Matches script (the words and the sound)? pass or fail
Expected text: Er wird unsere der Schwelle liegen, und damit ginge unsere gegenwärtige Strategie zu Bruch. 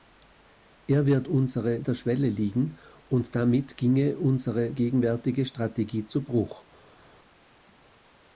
pass